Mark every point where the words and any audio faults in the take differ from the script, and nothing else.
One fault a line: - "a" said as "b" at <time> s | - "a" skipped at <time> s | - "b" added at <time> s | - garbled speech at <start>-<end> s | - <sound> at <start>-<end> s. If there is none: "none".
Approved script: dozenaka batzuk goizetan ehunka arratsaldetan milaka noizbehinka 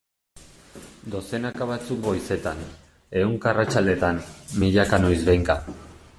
none